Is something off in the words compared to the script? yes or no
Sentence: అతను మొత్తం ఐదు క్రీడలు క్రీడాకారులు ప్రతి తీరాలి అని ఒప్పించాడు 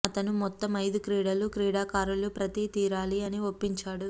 no